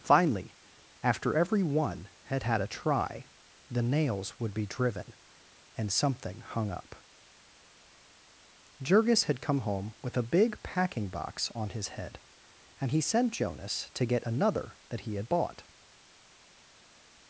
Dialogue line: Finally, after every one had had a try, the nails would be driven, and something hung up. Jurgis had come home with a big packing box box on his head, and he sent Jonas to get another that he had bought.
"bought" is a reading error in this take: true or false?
false